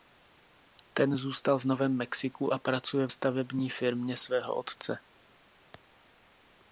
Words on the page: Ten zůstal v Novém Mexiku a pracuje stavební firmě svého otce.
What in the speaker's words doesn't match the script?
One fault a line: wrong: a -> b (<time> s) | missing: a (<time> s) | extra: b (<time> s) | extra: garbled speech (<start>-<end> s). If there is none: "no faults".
no faults